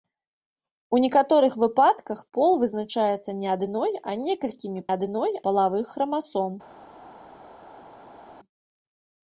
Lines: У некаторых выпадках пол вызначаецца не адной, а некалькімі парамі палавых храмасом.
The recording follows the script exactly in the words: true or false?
false